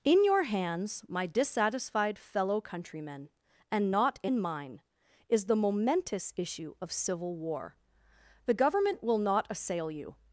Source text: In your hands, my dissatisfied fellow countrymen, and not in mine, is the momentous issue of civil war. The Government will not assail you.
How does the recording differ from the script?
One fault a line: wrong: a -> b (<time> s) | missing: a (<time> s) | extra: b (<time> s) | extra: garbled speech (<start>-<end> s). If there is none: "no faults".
no faults